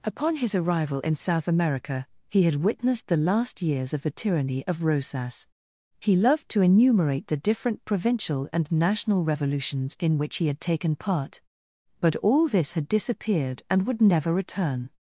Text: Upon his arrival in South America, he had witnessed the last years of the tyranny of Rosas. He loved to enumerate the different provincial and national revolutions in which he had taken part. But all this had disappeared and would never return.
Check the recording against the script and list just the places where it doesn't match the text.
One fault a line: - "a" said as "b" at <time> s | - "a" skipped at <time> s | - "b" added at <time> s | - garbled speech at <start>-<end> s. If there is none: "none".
none